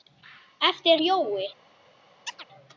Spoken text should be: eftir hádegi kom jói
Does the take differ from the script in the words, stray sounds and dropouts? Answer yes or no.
yes